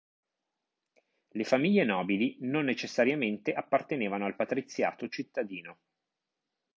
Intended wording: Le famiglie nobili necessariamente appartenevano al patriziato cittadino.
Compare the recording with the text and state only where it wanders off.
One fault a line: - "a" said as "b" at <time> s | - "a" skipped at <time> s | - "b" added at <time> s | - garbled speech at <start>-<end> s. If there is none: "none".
- "non" added at 2.4 s